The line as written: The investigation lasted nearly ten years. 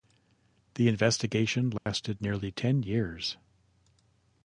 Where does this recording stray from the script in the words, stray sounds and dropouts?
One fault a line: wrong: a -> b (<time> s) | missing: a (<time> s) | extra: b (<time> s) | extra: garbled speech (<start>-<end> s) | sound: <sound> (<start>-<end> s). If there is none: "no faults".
sound: dropout (1.8-1.9 s)